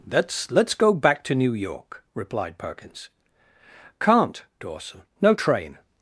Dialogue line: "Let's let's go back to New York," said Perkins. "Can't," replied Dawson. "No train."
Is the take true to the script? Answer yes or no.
no